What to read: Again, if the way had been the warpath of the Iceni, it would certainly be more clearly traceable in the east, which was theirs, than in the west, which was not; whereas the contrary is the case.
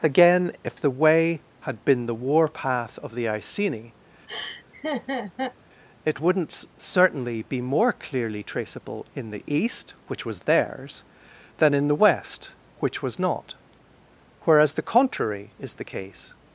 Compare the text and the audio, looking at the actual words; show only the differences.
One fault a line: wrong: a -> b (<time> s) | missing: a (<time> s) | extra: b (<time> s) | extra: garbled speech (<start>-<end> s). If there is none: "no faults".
wrong: would -> wouldn't (6.2 s)